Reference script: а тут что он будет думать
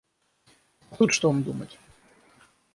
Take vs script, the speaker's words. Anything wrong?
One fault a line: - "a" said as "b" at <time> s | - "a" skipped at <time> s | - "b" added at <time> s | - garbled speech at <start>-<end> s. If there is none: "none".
- "будет" skipped at 1.4 s